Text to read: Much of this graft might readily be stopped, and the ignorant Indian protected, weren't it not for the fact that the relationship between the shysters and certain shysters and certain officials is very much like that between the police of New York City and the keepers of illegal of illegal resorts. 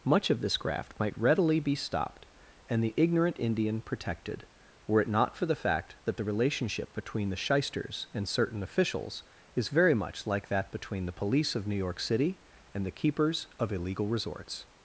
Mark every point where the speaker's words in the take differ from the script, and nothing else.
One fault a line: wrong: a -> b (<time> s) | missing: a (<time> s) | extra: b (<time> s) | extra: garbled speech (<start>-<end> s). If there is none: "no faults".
wrong: weren't -> were (4.9 s)
missing: shysters and certain (8.6 s)
missing: of illegal (14.1 s)